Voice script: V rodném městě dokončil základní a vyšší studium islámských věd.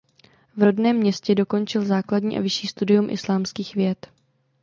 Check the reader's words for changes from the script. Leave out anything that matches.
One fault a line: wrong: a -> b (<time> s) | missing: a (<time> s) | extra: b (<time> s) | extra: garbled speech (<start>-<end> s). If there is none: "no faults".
no faults